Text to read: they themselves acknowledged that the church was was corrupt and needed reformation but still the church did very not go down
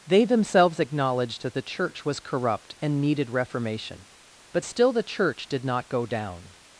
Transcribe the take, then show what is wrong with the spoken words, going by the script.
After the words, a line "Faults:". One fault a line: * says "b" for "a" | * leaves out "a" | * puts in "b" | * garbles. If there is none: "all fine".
they themselves acknowledged that the church was corrupt and needed reformation but still the church did not go down
Faults:
* leaves out "was"
* leaves out "very"